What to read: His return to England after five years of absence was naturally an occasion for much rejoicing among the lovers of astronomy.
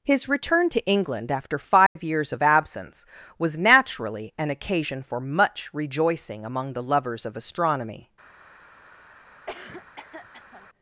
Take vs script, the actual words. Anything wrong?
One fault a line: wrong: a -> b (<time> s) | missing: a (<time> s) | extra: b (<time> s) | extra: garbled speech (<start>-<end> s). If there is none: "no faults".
no faults